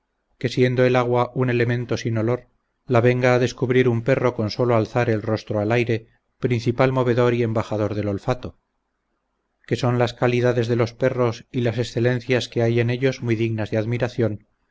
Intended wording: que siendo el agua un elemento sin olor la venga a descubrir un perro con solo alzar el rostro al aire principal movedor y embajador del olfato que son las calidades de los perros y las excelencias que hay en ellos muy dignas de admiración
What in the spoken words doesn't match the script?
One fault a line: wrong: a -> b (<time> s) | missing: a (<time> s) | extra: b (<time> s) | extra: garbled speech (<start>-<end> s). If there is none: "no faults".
no faults